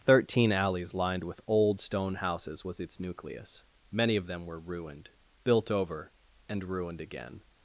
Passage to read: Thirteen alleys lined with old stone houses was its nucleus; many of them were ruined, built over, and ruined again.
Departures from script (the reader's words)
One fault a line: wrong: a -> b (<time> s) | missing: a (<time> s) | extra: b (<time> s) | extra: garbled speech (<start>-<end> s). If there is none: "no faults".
no faults